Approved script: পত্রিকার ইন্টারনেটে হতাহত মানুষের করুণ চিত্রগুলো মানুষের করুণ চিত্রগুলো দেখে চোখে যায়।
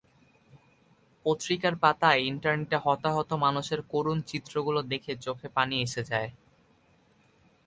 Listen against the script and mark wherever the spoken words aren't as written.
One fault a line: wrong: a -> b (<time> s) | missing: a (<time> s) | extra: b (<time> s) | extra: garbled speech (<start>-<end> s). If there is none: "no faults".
extra: পাতায় (1.8 s)
wrong: মানুষের করুণ চিত্রগুলো দেখে চোখে -> দেখে চোখে পানি এসে (4.9 s)